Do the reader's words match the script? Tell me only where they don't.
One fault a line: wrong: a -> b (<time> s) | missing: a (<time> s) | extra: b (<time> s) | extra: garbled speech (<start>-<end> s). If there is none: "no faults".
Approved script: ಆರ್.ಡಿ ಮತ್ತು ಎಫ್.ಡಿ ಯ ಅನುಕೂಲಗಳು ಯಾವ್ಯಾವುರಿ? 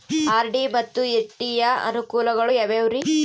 no faults